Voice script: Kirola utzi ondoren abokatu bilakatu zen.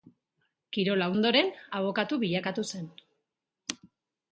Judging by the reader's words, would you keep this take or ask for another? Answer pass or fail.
fail